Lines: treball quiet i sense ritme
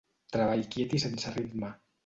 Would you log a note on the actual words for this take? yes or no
no